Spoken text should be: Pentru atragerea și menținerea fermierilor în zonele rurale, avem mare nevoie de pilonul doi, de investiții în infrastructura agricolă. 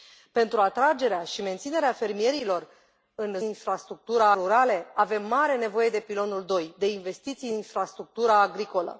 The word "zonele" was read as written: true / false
false